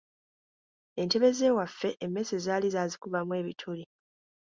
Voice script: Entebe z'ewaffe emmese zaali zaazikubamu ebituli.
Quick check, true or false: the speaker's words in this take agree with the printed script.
true